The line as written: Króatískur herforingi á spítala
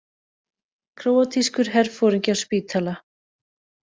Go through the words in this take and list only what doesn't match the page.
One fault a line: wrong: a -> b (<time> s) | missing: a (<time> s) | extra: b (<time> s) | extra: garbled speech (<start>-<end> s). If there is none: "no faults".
no faults